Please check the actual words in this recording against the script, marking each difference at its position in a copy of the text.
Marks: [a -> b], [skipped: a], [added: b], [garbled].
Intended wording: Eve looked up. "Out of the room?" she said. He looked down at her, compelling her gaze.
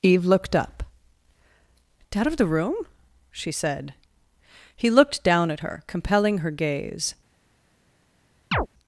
Eve looked up. "Out of the room?" she said. He looked down at her, compelling her gaze.